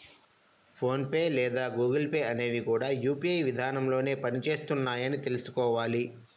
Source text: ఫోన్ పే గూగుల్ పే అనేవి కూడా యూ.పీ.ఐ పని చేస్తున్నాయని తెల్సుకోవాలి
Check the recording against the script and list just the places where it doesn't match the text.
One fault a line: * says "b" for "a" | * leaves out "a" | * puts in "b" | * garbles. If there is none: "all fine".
* puts in "లేదా"
* puts in "విధానంలోనే"